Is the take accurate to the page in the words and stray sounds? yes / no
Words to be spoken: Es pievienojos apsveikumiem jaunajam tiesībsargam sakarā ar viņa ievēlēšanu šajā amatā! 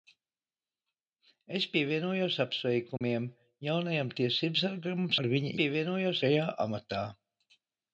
no